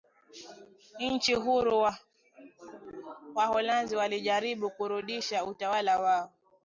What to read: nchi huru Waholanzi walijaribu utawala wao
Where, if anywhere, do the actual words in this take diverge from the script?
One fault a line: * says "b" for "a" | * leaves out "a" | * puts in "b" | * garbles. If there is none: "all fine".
* puts in "kurudisha"